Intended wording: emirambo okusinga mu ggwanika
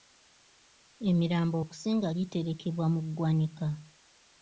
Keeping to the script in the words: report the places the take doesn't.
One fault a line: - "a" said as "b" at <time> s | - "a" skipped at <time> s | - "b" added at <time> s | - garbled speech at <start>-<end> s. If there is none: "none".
- "giterekebwa" added at 2.2 s